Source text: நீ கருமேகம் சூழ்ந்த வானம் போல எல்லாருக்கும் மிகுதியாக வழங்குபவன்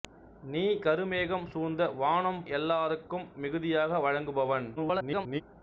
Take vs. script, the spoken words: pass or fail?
fail